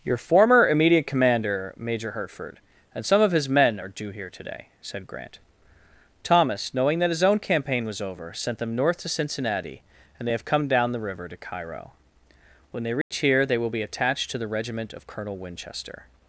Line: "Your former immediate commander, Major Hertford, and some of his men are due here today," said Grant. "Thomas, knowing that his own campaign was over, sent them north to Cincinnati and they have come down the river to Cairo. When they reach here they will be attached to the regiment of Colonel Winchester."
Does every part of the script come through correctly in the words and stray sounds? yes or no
no